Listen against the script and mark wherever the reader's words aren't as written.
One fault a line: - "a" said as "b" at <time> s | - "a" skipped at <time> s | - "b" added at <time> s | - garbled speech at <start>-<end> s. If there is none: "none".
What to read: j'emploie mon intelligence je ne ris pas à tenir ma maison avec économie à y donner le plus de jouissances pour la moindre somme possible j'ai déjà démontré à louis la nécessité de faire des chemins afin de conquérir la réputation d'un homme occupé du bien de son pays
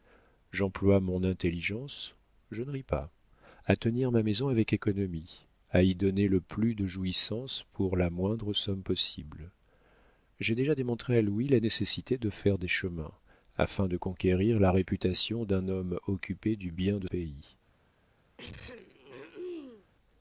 - "son" skipped at 17.1 s